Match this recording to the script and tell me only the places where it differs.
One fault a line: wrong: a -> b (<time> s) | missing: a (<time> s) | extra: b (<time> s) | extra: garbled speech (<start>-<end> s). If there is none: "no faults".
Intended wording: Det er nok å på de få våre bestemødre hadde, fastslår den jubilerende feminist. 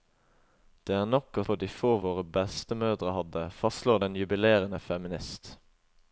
no faults